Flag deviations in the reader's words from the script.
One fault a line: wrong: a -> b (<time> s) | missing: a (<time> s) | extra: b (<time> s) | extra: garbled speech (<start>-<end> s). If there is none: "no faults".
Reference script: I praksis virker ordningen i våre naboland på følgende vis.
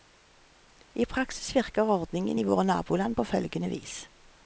no faults